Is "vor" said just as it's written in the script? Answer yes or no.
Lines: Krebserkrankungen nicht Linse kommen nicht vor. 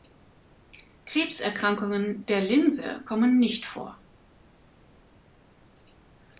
yes